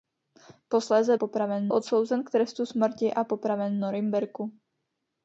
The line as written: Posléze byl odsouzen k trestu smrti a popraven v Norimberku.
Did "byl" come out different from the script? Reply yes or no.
yes